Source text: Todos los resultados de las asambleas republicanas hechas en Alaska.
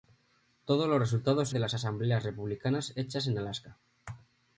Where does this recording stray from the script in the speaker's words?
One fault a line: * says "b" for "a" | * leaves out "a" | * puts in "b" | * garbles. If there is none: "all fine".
all fine